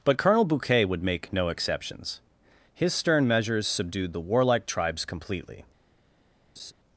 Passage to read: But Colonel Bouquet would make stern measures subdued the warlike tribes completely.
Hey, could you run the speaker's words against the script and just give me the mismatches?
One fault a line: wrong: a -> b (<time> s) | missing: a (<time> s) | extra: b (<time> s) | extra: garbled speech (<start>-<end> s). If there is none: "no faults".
extra: no exceptions His (1.3 s)